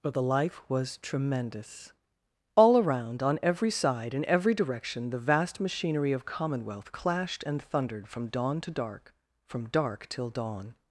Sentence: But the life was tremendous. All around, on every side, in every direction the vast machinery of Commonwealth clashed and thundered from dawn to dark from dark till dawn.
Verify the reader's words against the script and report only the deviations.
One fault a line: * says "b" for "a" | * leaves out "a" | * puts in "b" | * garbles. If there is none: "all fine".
all fine